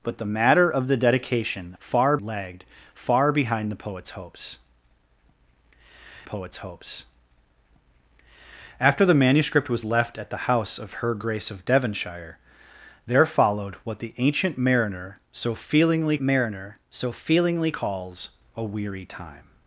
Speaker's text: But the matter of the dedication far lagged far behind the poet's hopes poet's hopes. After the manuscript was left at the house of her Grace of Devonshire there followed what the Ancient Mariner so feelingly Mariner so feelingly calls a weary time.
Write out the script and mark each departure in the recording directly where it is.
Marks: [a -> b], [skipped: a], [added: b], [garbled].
But the matter of the dedication far lagged far behind the poet's hopes poet's hopes. After the manuscript was left at the house of her Grace of Devonshire there followed what the Ancient Mariner so feelingly Mariner so feelingly calls a weary time.